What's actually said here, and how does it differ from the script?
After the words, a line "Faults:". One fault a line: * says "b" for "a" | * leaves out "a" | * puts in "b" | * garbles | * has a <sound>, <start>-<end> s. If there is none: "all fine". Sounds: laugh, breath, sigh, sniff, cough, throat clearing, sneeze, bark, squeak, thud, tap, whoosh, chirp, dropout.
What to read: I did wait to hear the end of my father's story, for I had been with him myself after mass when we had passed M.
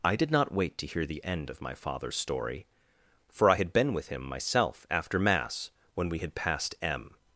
I did not wait to hear the end of my father's story, for I had been with him myself after mass when we had passed M.
Faults:
* puts in "not"